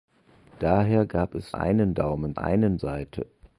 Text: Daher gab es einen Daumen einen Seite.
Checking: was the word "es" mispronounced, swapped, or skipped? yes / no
no